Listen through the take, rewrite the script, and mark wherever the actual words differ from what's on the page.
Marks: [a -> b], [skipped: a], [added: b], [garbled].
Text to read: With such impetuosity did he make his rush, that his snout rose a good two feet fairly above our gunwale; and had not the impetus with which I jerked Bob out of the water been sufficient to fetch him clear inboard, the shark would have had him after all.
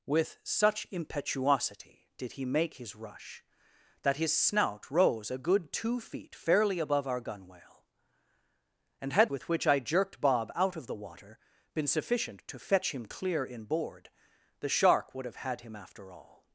With such impetuosity did he make his rush, that his snout rose a good two feet fairly above our gunwale; and had [skipped: not the impetus] with which I jerked Bob out of the water been sufficient to fetch him clear inboard, the shark would have had him after all.